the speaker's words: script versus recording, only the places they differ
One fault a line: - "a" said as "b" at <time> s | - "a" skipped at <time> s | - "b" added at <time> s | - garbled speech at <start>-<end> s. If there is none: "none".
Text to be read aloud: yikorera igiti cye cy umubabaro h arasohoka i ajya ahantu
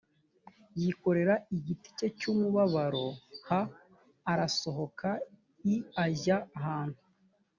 none